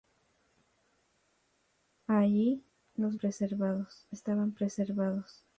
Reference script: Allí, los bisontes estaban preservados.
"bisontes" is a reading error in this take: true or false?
true